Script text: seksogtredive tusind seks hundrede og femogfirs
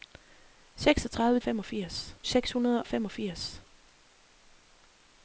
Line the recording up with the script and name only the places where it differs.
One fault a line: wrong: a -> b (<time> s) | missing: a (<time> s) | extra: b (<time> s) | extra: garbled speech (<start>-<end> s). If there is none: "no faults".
wrong: tusind -> femogfirs (1.4 s)
missing: og (2.8 s)